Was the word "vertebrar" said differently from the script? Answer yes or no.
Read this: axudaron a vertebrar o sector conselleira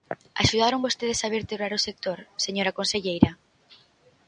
no